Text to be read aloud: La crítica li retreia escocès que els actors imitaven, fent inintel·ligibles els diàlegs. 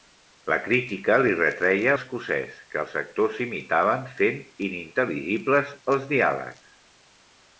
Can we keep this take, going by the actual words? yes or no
yes